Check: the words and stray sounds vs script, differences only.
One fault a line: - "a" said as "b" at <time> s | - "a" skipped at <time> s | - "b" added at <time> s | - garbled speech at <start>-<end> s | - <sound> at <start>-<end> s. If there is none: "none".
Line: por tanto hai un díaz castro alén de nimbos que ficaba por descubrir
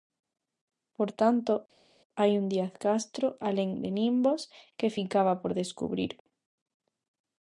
none